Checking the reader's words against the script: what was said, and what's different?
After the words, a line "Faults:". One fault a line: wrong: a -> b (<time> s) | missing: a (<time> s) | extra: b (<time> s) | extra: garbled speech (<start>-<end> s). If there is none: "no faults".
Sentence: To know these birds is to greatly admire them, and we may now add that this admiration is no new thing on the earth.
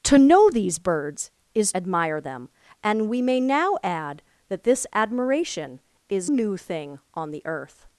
To know these birds is admire them, and we may now add that this admiration is new thing on the earth.
Faults:
missing: to greatly (1.7 s)
missing: no (6.3 s)